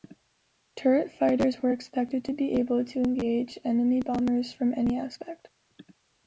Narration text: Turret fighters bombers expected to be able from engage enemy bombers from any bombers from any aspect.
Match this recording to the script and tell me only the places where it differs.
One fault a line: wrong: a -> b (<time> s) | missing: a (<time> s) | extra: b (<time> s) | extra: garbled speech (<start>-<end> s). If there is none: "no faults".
wrong: bombers -> were (1.6 s)
wrong: from -> to (2.8 s)
missing: bombers from any (5.0 s)